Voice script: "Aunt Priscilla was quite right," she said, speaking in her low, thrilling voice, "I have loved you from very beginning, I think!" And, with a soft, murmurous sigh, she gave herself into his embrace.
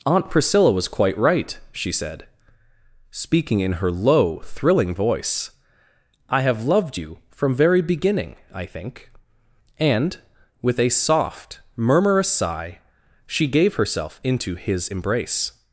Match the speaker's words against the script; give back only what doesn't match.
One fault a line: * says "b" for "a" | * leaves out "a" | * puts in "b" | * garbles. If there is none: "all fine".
all fine